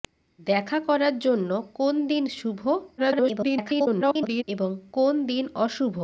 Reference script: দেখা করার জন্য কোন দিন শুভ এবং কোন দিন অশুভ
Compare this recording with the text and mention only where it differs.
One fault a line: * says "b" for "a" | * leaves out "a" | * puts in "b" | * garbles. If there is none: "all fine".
* garbles